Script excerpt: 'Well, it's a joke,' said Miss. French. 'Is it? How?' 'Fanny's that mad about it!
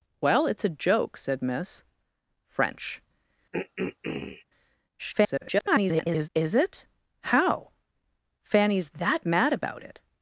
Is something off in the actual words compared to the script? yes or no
yes